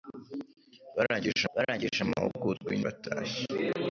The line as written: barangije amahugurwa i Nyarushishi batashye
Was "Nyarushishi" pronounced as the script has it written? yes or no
no